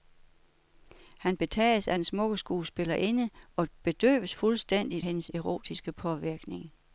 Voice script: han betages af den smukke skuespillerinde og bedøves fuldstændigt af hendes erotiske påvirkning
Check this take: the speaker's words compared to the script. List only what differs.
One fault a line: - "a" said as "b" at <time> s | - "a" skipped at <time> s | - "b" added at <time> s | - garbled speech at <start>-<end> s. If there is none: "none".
- "af" skipped at 5.0 s